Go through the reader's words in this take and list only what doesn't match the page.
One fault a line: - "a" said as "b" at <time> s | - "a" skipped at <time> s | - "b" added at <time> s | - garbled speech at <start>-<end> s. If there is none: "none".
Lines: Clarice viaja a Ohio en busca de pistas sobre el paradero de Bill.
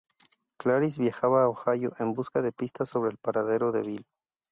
none